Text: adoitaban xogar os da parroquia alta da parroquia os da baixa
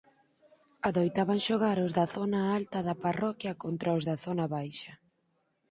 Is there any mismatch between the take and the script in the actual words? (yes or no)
yes